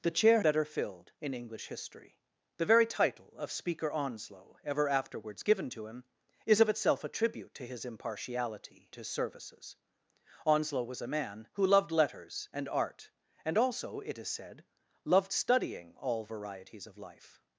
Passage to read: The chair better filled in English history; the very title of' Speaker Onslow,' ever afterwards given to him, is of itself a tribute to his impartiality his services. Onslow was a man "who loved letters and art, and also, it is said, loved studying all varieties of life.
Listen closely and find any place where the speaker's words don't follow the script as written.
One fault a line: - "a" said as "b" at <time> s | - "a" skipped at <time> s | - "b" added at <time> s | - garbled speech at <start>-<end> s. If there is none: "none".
none